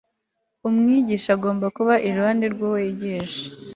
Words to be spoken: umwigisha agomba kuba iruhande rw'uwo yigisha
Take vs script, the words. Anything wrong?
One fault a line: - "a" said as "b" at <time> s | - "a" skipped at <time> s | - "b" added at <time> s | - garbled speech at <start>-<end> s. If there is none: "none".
none